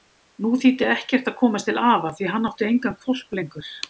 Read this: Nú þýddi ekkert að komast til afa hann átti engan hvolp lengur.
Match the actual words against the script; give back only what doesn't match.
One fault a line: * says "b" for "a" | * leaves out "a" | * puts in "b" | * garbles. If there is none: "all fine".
* puts in "því"